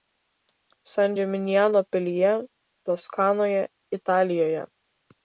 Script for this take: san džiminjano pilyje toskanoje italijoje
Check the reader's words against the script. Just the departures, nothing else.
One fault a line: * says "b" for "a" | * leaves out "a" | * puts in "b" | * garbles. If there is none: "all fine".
all fine